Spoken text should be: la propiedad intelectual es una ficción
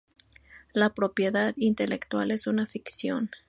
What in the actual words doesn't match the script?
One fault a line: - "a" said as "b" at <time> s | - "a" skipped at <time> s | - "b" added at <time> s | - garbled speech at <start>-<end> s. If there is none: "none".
none